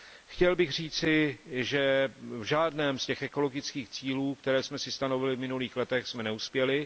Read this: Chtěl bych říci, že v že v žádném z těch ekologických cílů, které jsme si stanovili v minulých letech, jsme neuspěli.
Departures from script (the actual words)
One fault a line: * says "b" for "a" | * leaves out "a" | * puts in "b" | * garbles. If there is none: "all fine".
* leaves out "že v"